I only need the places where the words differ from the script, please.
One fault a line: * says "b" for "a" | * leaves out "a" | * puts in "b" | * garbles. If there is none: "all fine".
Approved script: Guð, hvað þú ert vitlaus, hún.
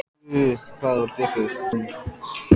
all fine